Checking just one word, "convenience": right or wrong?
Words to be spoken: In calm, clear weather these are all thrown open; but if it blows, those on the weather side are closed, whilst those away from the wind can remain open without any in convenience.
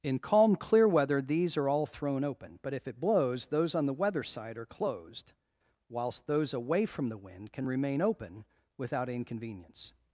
wrong